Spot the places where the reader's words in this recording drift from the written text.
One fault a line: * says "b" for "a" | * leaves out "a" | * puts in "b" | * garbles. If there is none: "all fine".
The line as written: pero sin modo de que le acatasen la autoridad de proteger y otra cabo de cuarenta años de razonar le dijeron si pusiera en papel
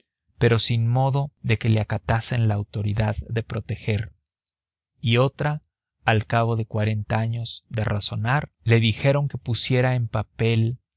* puts in "al"
* says "que" for "si"